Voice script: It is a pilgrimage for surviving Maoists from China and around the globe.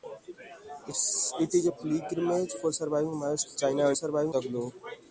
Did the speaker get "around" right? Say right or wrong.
wrong